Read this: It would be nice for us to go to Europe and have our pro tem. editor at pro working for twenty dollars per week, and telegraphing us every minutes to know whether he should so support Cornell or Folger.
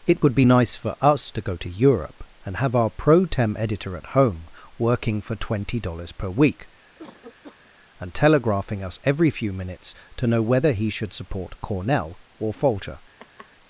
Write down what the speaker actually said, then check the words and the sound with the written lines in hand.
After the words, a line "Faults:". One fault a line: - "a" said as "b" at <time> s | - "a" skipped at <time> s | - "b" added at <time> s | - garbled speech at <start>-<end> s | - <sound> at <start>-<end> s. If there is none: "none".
It would be nice for us to go to Europe and have our pro tem. editor at home working for twenty dollars per week, and telegraphing us every few minutes to know whether he should support Cornell or Folger.
Faults:
- "pro" said as "home" at 4.1 s
- cough at 6.9-7.7 s
- "few" added at 9.3 s
- "so" skipped at 11.1 s
- laugh at 13.2-13.5 s